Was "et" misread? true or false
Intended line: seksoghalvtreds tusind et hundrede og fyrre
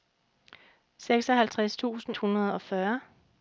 true